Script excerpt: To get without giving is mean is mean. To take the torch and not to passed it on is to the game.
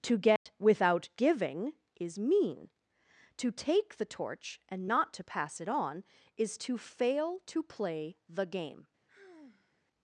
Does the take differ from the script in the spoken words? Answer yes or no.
yes